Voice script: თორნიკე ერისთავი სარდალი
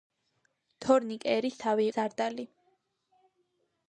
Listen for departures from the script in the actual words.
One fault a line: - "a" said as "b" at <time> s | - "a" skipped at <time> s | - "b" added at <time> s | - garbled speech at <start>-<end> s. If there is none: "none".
none